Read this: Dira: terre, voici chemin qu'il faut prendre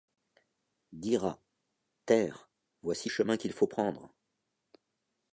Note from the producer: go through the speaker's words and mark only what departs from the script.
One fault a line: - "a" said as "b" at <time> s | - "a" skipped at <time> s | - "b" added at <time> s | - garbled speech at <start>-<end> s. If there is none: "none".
none